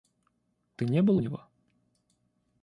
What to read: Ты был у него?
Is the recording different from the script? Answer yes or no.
yes